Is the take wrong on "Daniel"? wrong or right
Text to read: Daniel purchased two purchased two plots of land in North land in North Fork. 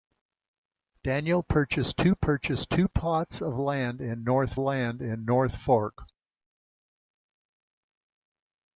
right